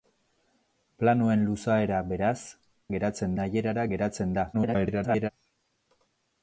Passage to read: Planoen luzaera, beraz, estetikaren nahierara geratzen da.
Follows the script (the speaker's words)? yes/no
no